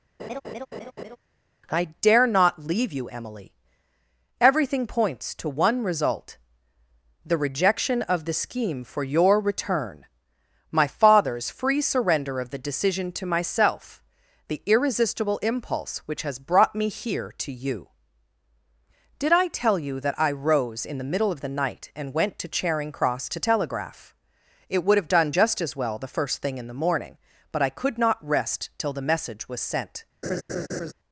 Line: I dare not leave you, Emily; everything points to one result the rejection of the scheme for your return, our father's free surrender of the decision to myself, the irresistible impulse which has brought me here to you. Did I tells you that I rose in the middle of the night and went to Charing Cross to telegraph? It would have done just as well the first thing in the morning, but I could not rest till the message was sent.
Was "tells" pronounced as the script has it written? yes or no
no